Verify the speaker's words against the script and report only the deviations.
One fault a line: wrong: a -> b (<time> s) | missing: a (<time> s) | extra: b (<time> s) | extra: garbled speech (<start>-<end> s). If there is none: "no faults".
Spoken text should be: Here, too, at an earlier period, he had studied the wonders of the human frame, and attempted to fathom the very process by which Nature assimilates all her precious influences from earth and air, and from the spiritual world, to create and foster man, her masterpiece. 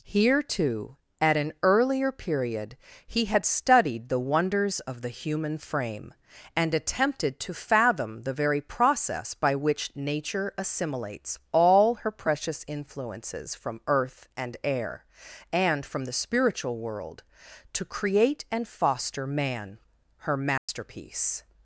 no faults